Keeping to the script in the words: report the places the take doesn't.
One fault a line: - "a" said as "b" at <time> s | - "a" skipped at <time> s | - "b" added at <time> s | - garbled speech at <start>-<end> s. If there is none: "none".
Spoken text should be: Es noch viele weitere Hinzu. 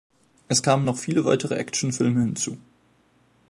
- "kamen" added at 0.6 s
- "Actionfilme" added at 1.5 s